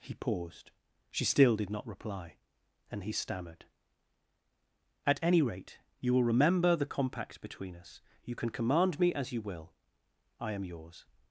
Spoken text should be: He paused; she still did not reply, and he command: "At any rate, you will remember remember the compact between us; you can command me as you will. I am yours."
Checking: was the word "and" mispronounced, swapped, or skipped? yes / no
no